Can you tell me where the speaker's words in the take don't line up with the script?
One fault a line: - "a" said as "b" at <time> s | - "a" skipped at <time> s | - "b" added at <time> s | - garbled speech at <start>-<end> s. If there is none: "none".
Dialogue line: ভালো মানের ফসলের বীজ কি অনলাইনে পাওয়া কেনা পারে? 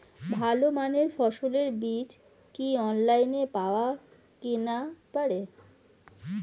none